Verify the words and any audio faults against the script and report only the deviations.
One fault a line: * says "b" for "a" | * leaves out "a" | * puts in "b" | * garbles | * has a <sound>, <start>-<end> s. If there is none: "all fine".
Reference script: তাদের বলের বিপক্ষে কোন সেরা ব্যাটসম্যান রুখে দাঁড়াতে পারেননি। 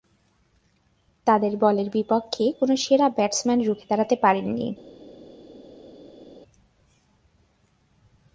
all fine